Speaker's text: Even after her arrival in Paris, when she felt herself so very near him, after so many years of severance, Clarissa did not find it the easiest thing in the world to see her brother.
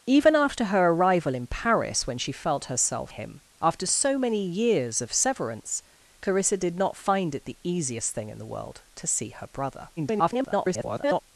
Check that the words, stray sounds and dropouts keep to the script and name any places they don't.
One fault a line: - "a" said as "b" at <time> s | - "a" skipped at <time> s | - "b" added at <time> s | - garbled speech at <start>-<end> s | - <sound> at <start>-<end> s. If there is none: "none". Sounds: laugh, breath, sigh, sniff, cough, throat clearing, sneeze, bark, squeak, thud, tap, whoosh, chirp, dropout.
- "so very near" skipped at 3.1 s
- garbled speech at 10.0-11.2 s